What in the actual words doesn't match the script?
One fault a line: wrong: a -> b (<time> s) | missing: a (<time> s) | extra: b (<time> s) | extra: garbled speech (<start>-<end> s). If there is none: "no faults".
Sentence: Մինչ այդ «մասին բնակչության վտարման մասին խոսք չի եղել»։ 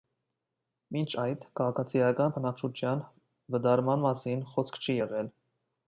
wrong: մասին -> քաղաքացիական (1.6 s)